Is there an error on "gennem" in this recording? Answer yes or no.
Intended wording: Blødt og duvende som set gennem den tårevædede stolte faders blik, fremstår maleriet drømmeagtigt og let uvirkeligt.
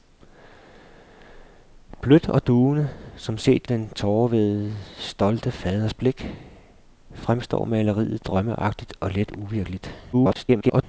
yes